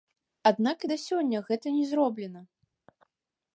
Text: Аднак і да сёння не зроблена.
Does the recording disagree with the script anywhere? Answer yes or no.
yes